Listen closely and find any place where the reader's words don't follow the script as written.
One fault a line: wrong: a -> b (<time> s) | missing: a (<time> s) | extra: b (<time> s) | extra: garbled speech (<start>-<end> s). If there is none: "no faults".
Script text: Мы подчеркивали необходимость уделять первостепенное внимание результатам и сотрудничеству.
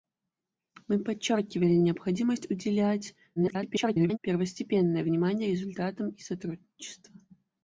extra: garbled speech (3.4-4.2 s)